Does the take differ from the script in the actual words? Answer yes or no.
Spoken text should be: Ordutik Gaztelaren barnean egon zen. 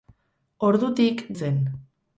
yes